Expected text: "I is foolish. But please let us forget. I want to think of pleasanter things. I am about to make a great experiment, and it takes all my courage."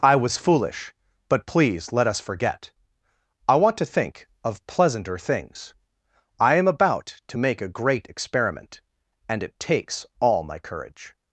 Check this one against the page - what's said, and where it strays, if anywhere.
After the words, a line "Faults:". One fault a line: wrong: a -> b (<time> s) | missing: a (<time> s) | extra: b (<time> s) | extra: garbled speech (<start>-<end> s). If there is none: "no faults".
"I was foolish. But please let us forget. I want to think of pleasanter things. I am about to make a great experiment, and it takes all my courage."
Faults:
wrong: is -> was (0.1 s)